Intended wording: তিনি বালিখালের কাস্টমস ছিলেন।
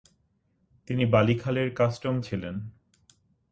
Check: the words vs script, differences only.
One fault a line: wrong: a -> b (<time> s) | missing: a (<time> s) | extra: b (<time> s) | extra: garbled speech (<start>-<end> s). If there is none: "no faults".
no faults